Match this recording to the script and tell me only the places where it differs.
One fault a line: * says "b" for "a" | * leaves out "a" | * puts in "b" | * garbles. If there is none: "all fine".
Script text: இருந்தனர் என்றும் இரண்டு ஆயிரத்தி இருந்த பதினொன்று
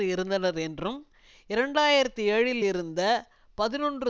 * puts in "ஏழில்"